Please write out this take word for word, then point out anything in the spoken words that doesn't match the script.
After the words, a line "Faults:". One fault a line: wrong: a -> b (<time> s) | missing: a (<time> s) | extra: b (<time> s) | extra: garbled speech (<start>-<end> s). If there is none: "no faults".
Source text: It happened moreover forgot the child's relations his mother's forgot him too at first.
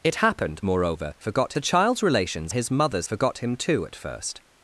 It happened moreover forgot the child's relations his mother's forgot him too at first.
Faults:
no faults